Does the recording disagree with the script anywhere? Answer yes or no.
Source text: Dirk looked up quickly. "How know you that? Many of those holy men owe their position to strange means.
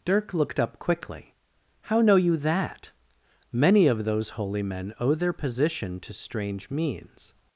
no